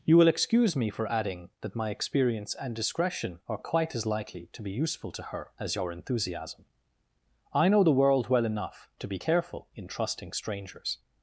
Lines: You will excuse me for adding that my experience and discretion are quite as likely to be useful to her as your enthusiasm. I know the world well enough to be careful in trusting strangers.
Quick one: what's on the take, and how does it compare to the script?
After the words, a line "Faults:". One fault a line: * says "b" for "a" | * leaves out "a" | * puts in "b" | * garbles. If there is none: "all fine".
You will excuse me for adding that my experience and discretion are quite as likely to be useful to her as your enthusiasm. I know the world well enough to be careful in trusting strangers.
Faults:
all fine